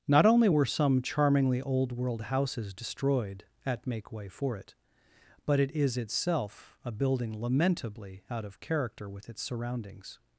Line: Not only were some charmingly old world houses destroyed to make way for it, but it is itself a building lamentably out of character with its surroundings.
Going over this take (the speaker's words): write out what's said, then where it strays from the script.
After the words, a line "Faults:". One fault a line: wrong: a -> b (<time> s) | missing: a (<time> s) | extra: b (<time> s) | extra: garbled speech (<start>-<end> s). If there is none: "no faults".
Not only were some charmingly old world houses destroyed at make way for it, but it is itself a building lamentably out of character with its surroundings.
Faults:
wrong: to -> at (3.7 s)